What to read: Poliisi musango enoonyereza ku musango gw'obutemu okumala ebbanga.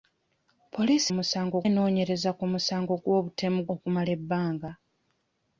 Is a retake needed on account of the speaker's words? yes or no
no